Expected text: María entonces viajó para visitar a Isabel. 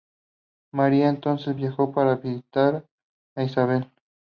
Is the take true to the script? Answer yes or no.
yes